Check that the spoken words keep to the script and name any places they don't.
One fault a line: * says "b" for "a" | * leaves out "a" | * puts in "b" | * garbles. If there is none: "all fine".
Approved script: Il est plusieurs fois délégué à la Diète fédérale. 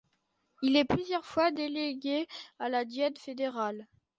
all fine